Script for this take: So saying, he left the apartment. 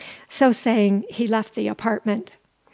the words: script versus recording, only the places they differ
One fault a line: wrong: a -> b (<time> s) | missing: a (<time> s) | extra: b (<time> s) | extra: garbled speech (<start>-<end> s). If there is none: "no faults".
no faults